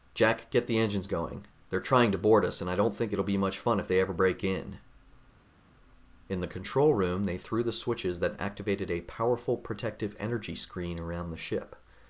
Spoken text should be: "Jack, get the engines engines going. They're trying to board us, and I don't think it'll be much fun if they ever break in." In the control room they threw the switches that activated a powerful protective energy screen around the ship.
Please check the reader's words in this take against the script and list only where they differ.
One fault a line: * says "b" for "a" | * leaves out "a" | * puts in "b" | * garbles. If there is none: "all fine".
* leaves out "engines"